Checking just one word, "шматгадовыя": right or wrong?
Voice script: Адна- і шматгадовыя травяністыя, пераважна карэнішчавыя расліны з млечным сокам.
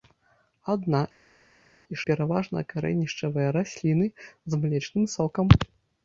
wrong